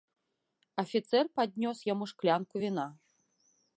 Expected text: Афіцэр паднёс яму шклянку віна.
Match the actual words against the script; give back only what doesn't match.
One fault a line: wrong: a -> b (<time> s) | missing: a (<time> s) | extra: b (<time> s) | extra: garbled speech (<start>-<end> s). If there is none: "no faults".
no faults